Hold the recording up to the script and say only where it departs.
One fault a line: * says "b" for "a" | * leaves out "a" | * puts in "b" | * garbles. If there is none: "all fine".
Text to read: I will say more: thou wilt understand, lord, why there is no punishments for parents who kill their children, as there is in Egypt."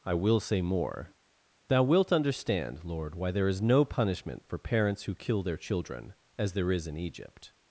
* says "punishment" for "punishments"